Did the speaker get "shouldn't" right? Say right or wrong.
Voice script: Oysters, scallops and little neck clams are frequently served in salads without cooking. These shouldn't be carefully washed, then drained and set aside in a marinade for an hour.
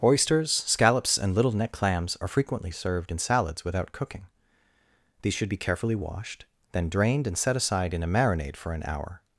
wrong